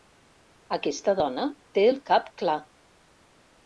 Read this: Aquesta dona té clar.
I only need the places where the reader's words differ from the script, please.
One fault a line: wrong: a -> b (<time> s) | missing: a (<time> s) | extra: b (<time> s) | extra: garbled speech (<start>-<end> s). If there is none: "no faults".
extra: el cap (1.9 s)